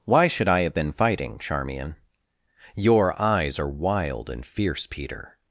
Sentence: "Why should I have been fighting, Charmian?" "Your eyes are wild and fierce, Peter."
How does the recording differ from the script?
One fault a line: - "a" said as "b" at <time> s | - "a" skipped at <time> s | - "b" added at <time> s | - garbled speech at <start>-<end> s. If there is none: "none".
none